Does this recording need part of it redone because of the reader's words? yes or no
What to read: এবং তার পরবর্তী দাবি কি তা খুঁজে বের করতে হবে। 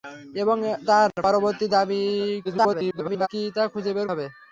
yes